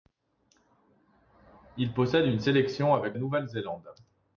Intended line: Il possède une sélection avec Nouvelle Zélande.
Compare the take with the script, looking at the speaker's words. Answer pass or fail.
pass